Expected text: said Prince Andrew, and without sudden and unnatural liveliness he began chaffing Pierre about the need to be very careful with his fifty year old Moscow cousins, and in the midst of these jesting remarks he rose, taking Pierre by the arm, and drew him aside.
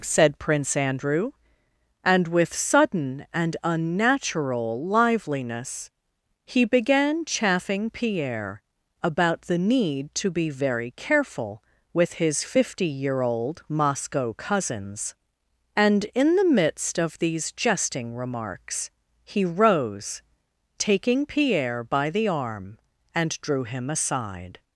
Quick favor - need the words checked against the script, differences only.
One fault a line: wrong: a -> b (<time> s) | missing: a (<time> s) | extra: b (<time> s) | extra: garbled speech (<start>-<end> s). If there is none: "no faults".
wrong: without -> with (2.3 s)